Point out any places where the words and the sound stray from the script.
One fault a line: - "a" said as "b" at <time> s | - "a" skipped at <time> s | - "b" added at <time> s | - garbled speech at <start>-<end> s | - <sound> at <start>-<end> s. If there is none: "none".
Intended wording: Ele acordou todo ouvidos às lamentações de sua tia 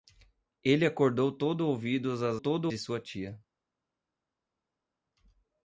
- "lamentações" said as "todo" at 2.4 s